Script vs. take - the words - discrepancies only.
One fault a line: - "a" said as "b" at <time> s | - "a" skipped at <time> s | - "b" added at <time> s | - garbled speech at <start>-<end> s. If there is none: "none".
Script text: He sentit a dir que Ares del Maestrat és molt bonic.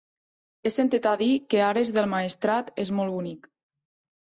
none